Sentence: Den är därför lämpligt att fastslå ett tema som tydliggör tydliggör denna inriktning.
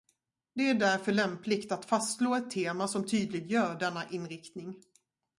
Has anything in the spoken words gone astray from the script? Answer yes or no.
yes